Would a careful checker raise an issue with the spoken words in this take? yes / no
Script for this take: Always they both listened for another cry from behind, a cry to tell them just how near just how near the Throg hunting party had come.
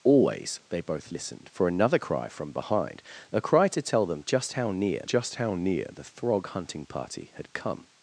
no